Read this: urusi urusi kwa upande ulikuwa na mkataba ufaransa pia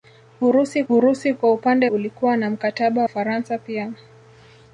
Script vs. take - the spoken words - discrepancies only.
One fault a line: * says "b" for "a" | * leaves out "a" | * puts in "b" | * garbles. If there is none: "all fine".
all fine